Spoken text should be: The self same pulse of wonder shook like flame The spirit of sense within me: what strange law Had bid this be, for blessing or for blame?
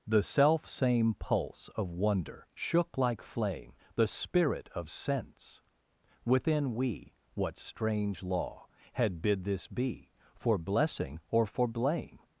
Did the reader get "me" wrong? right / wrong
wrong